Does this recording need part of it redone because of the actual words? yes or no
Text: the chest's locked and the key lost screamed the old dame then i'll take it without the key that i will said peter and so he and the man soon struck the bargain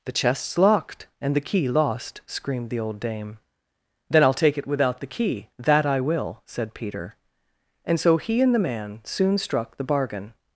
no